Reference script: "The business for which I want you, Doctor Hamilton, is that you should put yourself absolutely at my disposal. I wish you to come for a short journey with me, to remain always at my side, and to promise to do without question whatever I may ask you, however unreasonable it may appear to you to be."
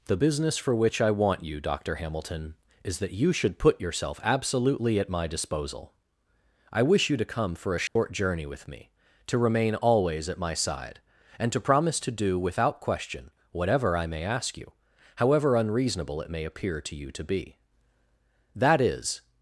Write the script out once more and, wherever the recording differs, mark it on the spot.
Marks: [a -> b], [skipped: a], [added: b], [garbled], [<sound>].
"The business for which I want you, Doctor Hamilton, is that you should put yourself absolutely at my disposal. I wish you to come for a short [dropout] journey with me, to remain always at my side, and to promise to do without question whatever I may ask you, however unreasonable it may appear to you to be." [added: That is]